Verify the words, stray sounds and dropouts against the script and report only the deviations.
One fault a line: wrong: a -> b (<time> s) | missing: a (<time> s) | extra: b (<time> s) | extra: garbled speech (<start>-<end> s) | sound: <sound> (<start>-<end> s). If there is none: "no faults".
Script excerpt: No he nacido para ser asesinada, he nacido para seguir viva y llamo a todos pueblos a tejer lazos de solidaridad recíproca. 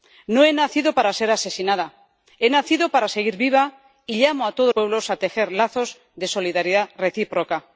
no faults